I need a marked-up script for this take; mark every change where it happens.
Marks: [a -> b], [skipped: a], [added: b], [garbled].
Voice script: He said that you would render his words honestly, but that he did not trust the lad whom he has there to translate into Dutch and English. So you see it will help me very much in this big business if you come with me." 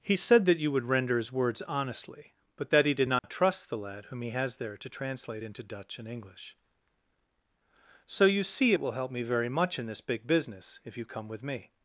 He said that you would render his words honestly, but that he did not trust the lad whom he has there to translate into Dutch and English. So you see it will help me very much in this big business if you come with me."